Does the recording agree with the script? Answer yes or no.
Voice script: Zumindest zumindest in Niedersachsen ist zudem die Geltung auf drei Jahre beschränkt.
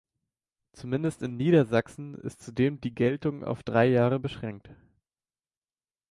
no